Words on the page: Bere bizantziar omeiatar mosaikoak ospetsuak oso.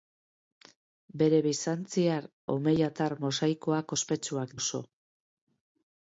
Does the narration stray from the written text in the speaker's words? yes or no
no